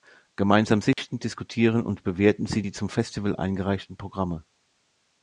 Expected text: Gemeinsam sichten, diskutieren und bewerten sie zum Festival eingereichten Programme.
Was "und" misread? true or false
false